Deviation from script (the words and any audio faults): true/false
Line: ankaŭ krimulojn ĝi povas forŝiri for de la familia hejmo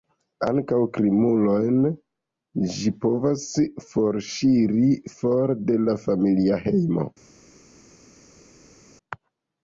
false